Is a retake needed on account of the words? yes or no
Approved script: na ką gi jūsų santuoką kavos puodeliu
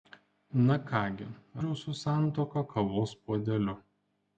no